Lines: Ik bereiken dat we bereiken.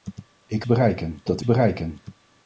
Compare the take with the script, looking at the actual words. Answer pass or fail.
pass